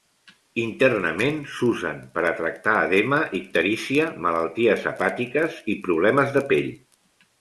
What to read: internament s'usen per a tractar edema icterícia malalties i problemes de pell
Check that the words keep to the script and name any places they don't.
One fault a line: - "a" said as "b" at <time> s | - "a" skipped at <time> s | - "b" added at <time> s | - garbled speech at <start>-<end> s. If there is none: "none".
- "hepàtiques" added at 4.9 s